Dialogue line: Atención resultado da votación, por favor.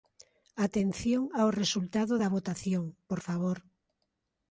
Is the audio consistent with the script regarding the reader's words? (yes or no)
no